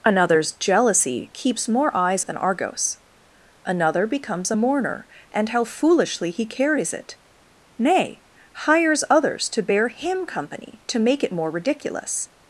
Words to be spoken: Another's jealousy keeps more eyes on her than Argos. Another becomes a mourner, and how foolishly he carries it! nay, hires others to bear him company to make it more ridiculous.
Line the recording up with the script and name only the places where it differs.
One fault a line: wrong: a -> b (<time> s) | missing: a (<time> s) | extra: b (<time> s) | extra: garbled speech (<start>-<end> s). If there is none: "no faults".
missing: on her (2.2 s)